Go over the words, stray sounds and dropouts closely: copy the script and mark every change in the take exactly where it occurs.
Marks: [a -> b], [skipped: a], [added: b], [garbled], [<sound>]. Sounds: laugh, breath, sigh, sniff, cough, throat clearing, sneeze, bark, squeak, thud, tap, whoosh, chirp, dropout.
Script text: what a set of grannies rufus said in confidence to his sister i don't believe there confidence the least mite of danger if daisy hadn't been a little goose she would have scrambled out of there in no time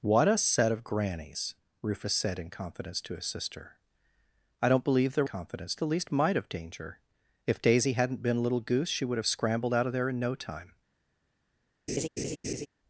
what a set of grannies rufus said in confidence to his sister i don't believe there confidence the least mite of danger if daisy hadn't been a little goose she would have scrambled out of there in no time [laugh]